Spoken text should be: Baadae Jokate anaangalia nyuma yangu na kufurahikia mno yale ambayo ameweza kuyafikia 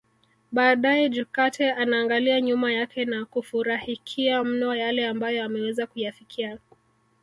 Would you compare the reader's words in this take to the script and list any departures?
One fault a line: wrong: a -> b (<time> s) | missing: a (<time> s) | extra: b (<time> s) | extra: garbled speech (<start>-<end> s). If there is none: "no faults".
wrong: yangu -> yake (2.7 s)